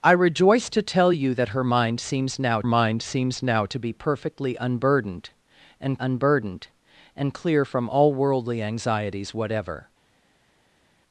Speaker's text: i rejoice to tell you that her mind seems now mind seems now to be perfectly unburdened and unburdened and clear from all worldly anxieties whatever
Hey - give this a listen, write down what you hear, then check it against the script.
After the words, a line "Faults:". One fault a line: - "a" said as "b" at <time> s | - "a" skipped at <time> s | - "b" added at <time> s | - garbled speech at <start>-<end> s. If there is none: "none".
i rejoice to tell you that her mind seems now mind seems now to be perfectly unburdened and unburdened and clear from all worldly anxieties whatever
Faults:
none